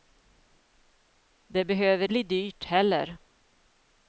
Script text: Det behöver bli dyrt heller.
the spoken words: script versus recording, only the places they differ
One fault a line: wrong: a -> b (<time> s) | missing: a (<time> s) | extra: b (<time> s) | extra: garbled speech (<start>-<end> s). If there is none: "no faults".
no faults